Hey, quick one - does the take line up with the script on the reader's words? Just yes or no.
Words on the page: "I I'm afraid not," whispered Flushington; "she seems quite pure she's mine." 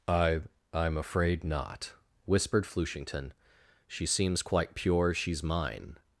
yes